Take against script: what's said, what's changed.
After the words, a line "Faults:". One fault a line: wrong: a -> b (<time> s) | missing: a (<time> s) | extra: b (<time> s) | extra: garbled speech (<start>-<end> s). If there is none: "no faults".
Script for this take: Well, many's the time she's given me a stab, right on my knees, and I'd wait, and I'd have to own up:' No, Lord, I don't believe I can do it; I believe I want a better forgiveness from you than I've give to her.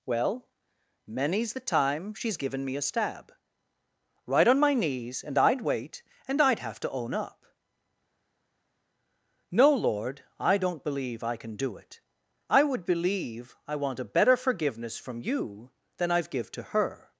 Well, many's the time she's given me a stab, right on my knees, and I'd wait, and I'd have to own up:' No, Lord, I don't believe I can do it; I would believe I want a better forgiveness from you than I've give to her.
Faults:
extra: would (12.6 s)